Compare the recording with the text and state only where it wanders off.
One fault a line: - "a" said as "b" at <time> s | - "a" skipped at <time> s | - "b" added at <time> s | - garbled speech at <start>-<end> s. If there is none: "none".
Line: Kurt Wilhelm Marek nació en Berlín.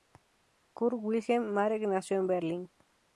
none